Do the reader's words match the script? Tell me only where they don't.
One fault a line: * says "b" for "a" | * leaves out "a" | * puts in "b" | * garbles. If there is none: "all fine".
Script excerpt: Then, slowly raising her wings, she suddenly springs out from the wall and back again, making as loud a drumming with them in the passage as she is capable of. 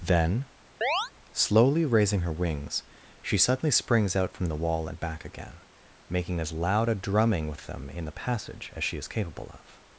all fine